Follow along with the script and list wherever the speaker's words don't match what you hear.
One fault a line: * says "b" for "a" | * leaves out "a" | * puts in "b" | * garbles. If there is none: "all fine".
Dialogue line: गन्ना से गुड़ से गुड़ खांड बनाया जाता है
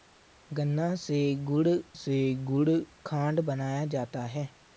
all fine